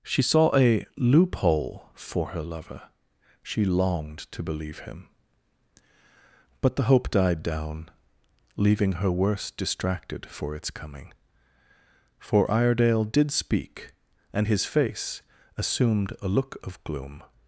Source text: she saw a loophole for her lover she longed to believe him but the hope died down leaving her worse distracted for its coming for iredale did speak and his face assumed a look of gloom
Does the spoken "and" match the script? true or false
true